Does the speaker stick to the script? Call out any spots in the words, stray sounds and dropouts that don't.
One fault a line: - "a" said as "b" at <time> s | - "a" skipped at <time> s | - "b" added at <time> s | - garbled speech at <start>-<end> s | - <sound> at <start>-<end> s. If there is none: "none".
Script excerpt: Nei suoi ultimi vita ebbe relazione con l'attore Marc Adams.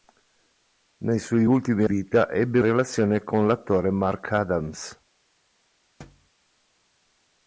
- thud at 6.0-6.3 s